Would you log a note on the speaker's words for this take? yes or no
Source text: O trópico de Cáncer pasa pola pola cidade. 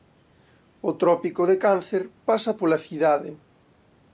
yes